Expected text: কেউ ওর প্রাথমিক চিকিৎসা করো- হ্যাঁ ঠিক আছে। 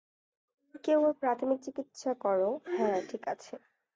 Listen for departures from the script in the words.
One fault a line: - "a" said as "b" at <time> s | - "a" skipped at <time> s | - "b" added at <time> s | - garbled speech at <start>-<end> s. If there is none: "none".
none